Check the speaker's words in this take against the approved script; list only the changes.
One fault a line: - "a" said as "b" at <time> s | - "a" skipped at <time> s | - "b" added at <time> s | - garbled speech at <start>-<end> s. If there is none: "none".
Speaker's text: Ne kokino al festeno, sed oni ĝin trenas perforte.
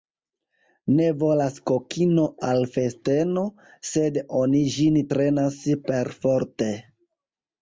- "volas" added at 1.2 s